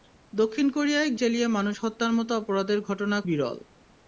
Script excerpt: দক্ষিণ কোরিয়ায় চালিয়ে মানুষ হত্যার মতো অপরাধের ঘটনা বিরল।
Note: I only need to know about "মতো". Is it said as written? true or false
true